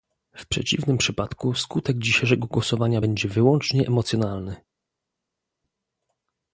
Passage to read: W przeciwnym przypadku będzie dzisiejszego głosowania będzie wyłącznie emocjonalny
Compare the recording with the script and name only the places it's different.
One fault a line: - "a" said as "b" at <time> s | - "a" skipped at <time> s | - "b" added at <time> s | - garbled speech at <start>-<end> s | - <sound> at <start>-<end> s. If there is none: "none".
- "będzie" said as "skutek" at 1.5 s